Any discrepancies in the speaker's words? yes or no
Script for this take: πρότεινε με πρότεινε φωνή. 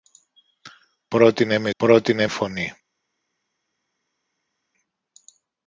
no